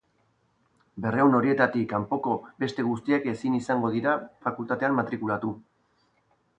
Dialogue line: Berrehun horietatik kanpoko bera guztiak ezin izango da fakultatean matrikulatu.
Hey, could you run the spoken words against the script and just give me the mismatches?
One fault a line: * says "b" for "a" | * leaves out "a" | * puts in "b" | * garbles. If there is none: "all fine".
* says "beste" for "bera"
* says "dira" for "da"